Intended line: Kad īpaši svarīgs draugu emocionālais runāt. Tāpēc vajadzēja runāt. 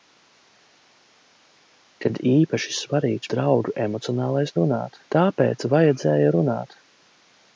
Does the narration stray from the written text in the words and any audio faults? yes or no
no